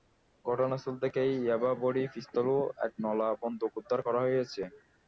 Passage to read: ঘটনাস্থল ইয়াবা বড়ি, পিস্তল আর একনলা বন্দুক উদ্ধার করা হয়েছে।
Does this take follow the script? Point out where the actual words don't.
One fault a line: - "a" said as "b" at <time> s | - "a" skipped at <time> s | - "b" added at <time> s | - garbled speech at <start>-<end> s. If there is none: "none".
- "থেকে" added at 1.0 s
- "আর" said as "ও" at 2.5 s